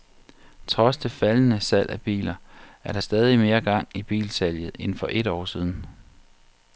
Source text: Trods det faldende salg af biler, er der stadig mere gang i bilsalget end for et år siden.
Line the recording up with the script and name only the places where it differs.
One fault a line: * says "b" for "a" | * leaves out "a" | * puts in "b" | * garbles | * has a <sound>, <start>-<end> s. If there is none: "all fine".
all fine